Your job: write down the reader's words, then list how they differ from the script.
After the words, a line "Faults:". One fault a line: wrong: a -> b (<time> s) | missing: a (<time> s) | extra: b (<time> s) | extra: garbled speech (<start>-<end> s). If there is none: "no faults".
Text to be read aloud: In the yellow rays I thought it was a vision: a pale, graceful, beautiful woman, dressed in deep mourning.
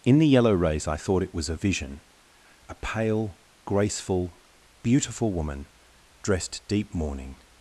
In the yellow rays I thought it was a vision: a pale, graceful, beautiful woman, dressed deep mourning.
Faults:
missing: in (6.7 s)